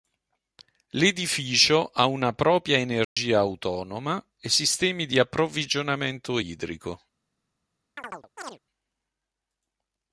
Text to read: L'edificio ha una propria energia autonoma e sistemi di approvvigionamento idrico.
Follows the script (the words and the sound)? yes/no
no